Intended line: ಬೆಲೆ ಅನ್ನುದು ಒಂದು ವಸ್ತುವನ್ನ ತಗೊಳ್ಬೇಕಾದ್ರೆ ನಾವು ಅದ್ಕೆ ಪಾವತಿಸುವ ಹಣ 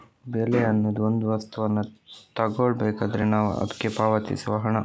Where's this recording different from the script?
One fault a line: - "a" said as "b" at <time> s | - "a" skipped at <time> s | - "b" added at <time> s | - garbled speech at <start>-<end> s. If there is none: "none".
none